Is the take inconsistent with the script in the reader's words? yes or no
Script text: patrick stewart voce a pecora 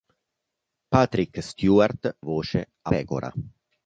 no